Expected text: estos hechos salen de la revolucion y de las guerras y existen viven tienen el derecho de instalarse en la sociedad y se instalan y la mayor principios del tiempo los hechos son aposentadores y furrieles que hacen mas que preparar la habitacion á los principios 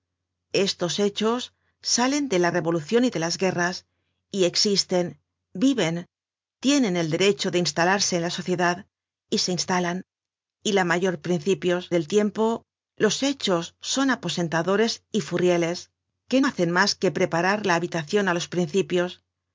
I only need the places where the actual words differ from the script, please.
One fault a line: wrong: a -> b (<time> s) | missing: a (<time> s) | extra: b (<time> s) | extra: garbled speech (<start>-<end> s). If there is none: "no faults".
no faults